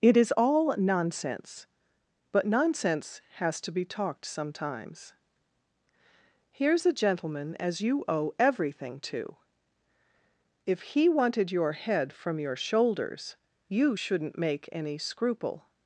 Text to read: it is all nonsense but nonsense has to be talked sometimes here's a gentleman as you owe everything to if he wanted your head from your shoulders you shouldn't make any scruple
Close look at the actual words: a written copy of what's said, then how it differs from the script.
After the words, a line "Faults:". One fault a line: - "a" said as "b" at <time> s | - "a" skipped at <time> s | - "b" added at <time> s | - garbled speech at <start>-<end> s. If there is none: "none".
it is all nonsense but nonsense has to be talked sometimes here's a gentleman as you owe everything to if he wanted your head from your shoulders you shouldn't make any scruple
Faults:
none